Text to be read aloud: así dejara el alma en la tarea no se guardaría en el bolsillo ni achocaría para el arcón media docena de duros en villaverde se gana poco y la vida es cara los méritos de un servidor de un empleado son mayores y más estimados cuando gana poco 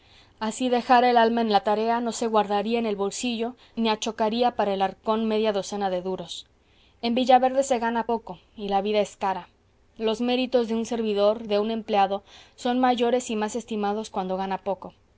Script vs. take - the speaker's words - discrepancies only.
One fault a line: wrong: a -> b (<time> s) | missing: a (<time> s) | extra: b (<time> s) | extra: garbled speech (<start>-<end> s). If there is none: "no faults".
no faults